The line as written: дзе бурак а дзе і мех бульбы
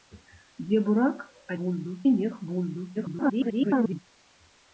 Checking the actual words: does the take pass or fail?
fail